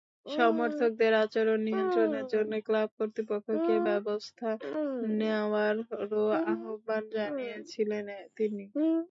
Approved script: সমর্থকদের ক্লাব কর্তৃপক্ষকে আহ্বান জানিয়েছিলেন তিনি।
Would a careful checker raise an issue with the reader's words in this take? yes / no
yes